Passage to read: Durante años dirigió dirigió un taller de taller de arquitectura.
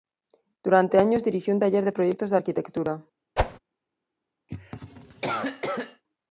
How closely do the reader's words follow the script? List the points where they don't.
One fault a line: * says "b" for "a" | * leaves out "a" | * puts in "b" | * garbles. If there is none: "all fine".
* leaves out "dirigió"
* says "proyectos" for "taller"